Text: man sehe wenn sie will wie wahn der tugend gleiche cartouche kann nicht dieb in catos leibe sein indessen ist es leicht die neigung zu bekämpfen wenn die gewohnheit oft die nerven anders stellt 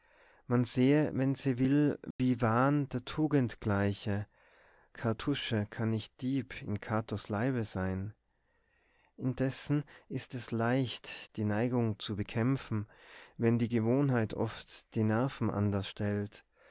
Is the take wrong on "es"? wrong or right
right